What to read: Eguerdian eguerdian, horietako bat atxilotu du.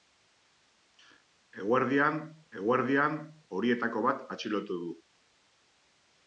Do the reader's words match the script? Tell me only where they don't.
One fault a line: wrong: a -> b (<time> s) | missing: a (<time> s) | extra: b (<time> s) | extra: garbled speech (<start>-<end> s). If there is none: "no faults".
no faults